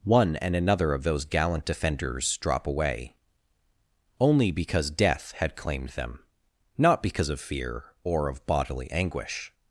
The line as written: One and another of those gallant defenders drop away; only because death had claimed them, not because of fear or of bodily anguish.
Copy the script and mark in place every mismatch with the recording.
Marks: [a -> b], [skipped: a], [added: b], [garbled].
One and another of those gallant defenders drop away; only because death had claimed them, not because of fear or of bodily anguish.